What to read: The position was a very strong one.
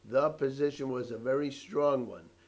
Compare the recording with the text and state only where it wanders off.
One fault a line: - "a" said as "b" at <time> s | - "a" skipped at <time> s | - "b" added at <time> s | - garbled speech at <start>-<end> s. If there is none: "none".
none